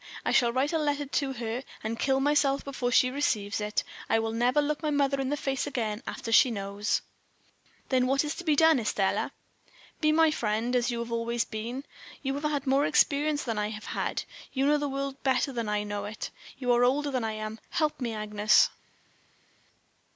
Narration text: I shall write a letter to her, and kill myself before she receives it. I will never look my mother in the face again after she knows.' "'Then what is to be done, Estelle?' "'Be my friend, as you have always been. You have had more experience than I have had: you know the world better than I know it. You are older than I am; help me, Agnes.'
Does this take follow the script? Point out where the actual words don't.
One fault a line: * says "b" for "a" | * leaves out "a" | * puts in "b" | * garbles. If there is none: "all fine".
all fine